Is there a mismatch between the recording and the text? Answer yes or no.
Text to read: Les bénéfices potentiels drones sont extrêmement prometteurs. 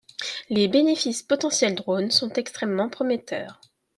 no